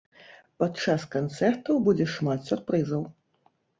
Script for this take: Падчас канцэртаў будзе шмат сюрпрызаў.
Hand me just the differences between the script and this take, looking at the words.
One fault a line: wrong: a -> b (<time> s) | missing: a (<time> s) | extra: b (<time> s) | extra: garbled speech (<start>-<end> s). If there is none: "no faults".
no faults